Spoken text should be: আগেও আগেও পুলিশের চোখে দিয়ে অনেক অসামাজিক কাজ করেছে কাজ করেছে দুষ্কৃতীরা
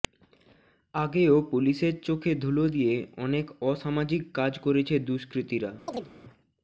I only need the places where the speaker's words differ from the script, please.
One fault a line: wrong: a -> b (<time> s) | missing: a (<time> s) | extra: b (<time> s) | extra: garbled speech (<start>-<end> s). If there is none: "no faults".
missing: আগেও (1.4 s)
extra: ধুলো (2.4 s)
missing: কাজ করেছে (5.0 s)